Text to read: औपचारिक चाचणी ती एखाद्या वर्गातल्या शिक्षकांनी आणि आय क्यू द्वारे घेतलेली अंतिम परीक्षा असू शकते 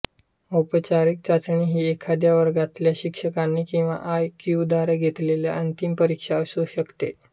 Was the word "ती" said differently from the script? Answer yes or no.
yes